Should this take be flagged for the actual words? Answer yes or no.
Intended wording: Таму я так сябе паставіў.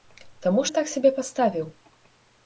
no